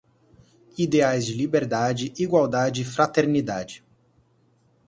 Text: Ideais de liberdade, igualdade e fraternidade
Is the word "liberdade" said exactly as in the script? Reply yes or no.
yes